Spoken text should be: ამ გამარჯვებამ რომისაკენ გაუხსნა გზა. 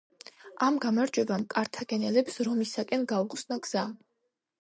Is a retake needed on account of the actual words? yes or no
yes